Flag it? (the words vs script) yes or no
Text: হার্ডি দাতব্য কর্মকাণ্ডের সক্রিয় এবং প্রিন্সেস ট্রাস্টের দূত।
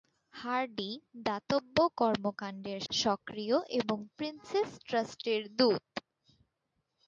no